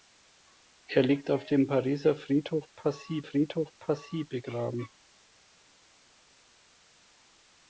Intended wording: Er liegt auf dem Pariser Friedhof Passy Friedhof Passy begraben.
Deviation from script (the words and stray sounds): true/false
false